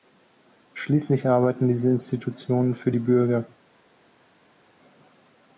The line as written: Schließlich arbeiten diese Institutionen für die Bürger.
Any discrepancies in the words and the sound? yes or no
no